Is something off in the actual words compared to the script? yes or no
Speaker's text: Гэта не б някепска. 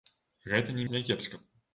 no